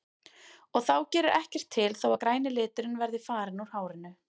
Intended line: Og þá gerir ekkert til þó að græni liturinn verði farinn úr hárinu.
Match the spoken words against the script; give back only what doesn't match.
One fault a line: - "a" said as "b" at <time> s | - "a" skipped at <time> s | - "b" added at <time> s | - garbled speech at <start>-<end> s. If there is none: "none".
none